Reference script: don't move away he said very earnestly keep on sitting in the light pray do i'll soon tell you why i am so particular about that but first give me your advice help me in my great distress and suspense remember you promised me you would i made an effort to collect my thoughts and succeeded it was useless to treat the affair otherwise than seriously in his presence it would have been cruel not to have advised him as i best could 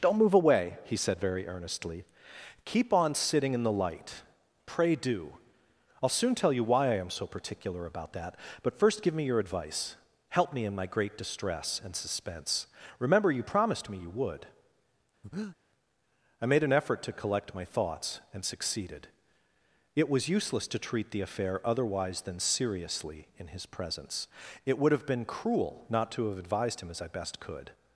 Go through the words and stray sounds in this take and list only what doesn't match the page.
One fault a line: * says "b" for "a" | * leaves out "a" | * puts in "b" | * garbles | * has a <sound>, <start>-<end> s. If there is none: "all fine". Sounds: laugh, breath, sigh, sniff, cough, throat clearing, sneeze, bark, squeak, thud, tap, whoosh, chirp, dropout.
* has a breath, 15.2-15.6 s